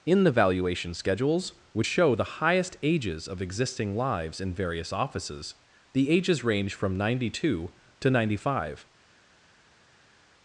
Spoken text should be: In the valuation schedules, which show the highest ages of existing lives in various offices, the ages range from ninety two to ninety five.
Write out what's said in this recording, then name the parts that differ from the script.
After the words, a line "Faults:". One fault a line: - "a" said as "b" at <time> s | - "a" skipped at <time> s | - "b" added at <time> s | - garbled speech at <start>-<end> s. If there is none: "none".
In the valuation schedules, which show the highest ages of existing lives in various offices, the ages range from ninety two to ninety five.
Faults:
none